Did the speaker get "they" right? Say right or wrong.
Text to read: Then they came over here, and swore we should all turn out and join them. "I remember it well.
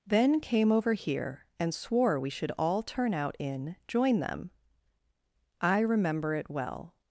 wrong